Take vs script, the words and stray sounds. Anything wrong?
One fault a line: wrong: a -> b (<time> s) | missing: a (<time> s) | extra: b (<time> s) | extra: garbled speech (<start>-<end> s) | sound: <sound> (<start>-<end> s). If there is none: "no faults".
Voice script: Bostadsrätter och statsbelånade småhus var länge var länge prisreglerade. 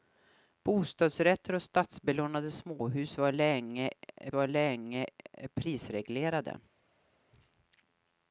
no faults